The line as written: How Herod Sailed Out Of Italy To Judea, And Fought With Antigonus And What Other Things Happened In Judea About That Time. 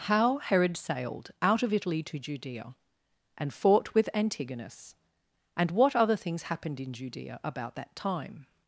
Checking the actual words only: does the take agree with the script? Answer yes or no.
yes